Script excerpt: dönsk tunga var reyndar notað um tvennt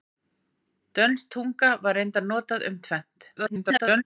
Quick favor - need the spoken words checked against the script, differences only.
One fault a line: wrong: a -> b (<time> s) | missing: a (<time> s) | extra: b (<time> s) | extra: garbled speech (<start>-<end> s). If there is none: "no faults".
extra: garbled speech (3.4-4.0 s)